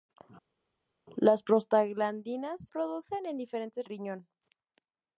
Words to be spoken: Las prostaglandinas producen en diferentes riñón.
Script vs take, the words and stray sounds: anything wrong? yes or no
no